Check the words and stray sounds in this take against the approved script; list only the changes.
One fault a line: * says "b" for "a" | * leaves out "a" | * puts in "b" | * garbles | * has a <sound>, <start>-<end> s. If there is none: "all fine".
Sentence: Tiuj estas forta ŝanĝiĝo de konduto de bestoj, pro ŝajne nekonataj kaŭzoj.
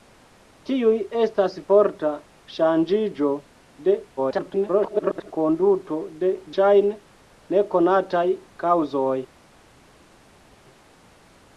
* garbles
* leaves out "bestoj pro"